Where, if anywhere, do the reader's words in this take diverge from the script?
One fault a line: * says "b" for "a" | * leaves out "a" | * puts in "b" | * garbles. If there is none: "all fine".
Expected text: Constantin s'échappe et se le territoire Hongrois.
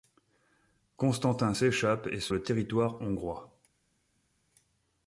all fine